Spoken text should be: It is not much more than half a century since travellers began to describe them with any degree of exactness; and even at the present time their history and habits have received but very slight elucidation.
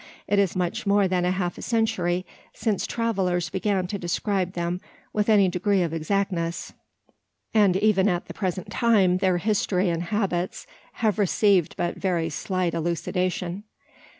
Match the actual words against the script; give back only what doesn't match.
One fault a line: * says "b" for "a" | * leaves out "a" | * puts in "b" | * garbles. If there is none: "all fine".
* leaves out "not"